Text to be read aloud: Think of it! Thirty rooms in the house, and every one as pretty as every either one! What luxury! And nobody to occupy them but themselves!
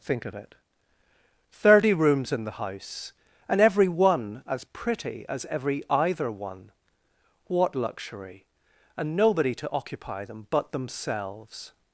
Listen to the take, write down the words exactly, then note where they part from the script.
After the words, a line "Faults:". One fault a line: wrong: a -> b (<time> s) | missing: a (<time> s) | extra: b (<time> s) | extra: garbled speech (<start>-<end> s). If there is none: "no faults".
Think of it! Thirty rooms in the house, and every one as pretty as every either one! What luxury! And nobody to occupy them but themselves!
Faults:
no faults